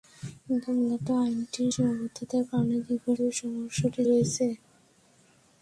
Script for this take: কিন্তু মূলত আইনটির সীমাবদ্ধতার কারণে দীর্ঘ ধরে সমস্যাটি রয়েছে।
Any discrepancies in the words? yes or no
no